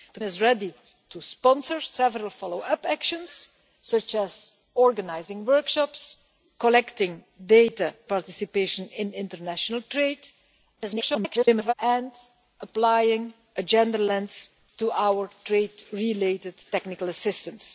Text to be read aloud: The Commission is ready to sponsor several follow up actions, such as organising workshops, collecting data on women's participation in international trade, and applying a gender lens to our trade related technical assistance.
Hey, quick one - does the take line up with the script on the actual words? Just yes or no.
no